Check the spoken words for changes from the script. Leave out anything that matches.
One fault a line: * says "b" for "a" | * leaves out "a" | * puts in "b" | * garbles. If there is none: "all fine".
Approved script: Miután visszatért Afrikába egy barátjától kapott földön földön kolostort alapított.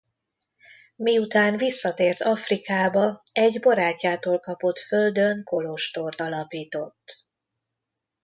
* leaves out "földön"